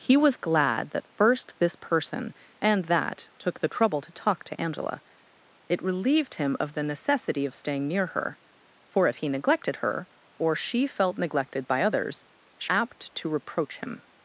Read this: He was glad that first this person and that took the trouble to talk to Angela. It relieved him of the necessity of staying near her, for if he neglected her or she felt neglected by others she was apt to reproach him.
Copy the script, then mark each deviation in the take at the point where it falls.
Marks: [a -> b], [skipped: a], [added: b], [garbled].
He was glad that first this person and that took the trouble to talk to Angela. It relieved him of the necessity of staying near her, for if he neglected her or she felt neglected by others she [skipped: was] apt to reproach him.